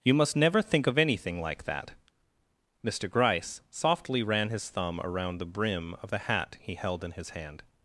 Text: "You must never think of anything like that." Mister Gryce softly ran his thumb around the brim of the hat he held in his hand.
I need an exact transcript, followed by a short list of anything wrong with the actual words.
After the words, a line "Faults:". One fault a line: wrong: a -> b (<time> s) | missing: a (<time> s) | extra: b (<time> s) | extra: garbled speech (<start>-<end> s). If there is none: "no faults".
"You must never think of anything like that." Mister Gryce softly ran his thumb around the brim of the hat he held in his hand.
Faults:
no faults